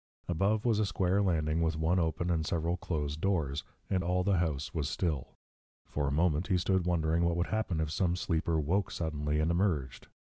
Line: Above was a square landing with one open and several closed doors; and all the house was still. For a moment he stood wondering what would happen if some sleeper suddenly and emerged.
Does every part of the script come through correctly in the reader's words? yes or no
no